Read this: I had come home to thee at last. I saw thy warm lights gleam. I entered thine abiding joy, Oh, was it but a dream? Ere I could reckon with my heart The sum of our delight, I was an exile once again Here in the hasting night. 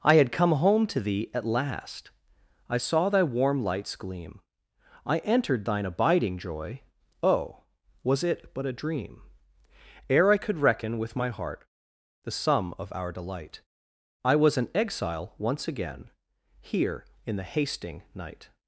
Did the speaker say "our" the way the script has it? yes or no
yes